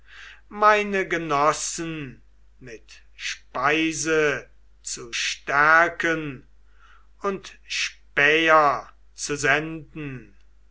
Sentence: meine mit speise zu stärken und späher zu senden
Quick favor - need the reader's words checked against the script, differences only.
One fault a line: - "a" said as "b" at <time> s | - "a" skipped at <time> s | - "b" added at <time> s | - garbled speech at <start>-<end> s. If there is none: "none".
- "genossen" added at 1.1 s